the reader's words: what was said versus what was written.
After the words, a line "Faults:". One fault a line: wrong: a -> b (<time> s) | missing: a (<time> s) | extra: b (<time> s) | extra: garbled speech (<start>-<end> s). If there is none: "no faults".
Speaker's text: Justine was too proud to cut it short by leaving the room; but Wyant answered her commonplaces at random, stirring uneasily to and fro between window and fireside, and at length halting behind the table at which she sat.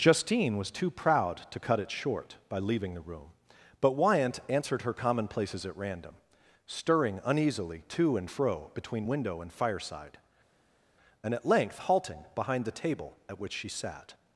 Justine was too proud to cut it short by leaving the room; but Wyant answered her commonplaces at random, stirring uneasily to and fro between window and fireside, and at length halting behind the table at which she sat.
Faults:
no faults